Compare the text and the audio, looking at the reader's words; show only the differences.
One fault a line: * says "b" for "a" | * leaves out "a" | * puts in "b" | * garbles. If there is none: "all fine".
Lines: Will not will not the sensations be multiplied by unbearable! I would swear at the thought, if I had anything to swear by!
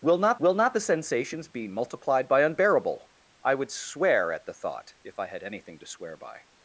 all fine